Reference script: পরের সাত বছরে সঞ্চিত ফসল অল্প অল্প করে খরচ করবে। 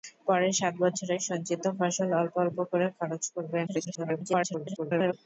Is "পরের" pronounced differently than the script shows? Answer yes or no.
no